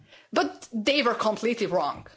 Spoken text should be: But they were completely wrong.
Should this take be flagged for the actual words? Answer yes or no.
no